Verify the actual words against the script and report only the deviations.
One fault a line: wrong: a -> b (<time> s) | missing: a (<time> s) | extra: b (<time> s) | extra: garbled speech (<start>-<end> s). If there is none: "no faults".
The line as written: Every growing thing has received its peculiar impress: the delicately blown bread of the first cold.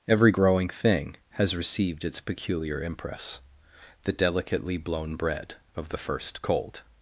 no faults